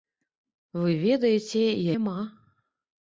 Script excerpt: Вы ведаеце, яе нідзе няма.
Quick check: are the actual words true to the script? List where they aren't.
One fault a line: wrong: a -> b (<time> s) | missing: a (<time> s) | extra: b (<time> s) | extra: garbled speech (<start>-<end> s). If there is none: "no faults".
missing: яе нідзе (1.6 s)